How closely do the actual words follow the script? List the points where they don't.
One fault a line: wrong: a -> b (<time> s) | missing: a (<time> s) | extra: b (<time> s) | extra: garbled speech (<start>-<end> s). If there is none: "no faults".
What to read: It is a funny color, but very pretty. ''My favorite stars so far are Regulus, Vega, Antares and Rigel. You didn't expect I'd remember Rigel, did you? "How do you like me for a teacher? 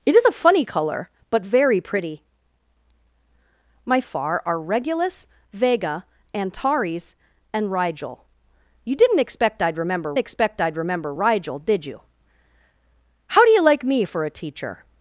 missing: favorite stars so (4.0 s)
extra: expect I'd remember (10.2 s)